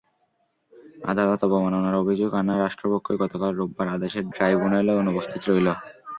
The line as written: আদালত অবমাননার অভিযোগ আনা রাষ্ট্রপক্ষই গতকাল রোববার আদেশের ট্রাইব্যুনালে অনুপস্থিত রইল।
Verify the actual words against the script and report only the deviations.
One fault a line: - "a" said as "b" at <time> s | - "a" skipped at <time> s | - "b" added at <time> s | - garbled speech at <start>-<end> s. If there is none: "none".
none